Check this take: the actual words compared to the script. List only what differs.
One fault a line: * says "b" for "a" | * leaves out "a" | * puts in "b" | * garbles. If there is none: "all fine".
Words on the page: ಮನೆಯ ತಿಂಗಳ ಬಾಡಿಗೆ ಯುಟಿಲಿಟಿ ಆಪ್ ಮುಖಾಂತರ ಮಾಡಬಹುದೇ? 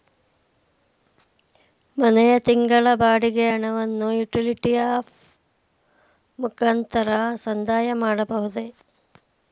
* puts in "ಹಣವನ್ನು"
* puts in "ಸಂದಾಯ"